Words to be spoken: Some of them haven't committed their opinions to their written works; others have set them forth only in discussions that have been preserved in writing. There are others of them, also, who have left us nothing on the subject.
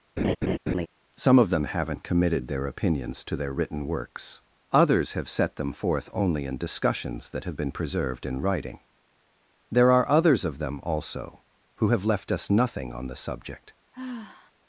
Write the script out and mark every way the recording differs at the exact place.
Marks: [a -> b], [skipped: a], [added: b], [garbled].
Some of them haven't committed their opinions to their written works; others have set them forth only in discussions that have been preserved in writing. There are others of them, also, who have left us nothing on the subject.